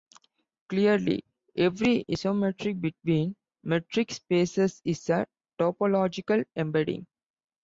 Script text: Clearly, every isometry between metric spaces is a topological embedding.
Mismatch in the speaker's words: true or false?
false